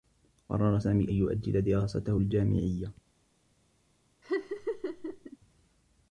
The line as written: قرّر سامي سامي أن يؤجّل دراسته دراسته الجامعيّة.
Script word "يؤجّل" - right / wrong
right